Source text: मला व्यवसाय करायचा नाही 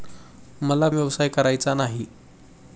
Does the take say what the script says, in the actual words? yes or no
yes